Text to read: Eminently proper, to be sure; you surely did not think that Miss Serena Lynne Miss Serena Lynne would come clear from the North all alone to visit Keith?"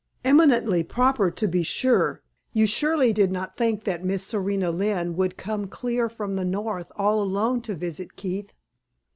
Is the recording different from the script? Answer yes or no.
yes